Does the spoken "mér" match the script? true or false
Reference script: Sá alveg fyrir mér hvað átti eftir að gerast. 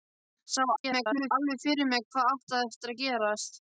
true